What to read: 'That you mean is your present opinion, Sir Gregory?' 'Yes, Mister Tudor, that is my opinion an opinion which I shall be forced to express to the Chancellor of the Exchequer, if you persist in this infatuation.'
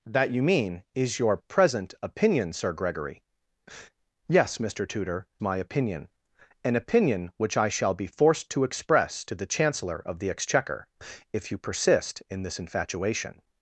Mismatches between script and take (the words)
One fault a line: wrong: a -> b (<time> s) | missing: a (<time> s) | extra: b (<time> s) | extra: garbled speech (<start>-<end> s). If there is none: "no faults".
missing: that is (5.3 s)